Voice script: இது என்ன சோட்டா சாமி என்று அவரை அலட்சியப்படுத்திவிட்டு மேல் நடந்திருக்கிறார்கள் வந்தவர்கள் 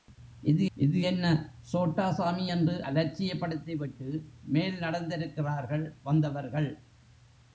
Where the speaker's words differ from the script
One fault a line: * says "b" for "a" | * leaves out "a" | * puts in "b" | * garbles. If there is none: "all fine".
* puts in "இது"
* leaves out "அவரை"